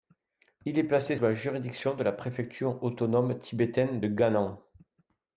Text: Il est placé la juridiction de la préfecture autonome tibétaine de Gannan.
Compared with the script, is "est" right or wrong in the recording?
right